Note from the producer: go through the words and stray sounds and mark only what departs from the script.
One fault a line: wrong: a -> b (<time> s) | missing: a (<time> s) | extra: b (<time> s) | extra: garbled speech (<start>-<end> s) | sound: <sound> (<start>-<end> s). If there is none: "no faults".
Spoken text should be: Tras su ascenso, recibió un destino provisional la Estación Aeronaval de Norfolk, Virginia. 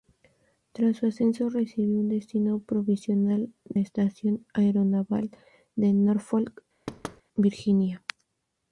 sound: thud (6.9-7.2 s)